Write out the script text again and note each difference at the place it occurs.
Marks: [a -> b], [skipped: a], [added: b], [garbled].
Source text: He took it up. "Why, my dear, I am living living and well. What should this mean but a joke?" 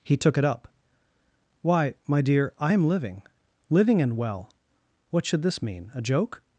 He took it up. "Why, my dear, I am living living and well. What should this mean [skipped: but] a joke?"